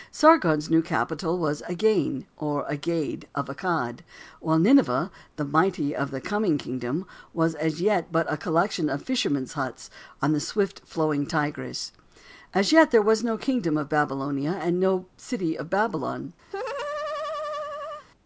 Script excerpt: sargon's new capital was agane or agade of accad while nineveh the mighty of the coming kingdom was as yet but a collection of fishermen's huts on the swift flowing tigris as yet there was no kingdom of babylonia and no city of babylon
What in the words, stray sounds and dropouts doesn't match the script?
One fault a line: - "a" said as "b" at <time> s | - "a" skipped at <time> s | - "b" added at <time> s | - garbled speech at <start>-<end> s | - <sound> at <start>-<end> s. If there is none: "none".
- laugh at 16.5-18.1 s